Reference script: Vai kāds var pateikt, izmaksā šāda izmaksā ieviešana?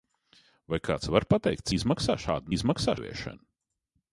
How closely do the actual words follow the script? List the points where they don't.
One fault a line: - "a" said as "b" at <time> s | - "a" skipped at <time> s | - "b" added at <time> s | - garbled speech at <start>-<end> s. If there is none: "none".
none